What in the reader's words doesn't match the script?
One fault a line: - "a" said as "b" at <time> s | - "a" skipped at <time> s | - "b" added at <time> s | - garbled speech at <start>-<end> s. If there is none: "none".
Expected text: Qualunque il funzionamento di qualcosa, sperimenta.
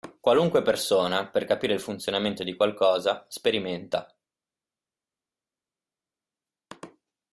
- "persona per capire" added at 0.6 s